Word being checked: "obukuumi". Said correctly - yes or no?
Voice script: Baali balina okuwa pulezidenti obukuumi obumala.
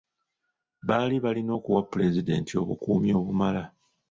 yes